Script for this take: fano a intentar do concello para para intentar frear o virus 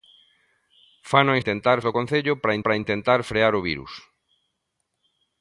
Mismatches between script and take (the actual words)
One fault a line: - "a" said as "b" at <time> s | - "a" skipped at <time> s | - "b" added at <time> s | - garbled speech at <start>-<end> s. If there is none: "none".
none